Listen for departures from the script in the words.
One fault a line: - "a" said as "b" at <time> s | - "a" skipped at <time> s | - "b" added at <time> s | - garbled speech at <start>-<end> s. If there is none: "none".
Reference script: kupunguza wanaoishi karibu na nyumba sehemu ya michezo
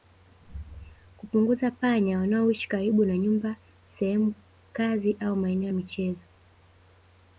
- "panya" added at 1.7 s
- "kazi au maeneo" added at 4.7 s